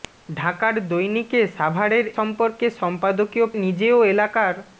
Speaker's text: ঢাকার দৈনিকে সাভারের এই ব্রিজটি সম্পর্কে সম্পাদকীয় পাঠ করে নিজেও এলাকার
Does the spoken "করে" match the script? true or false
false